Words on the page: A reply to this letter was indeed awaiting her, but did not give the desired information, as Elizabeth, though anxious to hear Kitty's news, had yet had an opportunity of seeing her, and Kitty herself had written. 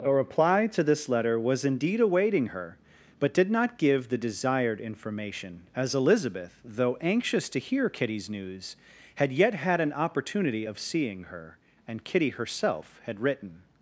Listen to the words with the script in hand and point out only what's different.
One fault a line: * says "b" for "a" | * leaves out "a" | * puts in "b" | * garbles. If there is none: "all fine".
all fine